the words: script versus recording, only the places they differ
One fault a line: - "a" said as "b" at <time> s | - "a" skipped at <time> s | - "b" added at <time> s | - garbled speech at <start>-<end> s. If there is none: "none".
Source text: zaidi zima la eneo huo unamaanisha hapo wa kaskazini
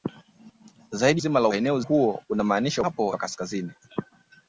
none